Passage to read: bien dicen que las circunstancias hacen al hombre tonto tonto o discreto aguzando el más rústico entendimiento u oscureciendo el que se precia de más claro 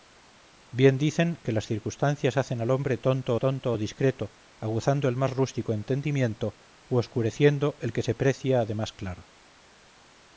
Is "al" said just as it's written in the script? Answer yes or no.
yes